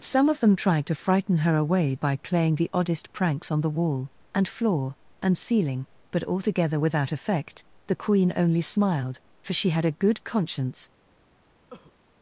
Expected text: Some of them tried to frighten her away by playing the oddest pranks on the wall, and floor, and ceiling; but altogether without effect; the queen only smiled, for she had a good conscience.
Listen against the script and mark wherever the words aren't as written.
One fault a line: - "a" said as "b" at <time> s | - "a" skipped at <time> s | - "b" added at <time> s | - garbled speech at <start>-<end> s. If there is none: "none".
none